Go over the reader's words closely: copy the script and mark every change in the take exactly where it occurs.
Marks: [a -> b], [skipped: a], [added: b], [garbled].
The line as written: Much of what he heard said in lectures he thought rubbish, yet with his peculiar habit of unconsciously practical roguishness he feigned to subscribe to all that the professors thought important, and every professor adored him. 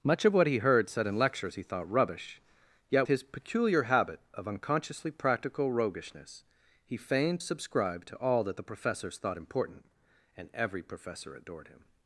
Much of what he heard said in lectures he thought rubbish, yet [skipped: with] his peculiar habit of unconsciously practical roguishness he feigned [skipped: to] subscribe to all that the professors thought important, and every professor adored him.